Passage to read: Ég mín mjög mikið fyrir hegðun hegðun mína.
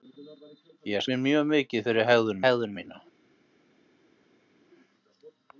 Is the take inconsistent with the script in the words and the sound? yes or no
no